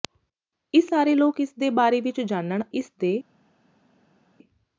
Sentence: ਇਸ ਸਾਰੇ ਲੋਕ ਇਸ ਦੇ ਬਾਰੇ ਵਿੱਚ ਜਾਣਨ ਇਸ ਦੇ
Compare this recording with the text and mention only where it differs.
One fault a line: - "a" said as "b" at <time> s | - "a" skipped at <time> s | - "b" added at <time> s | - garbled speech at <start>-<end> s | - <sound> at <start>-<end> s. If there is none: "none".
none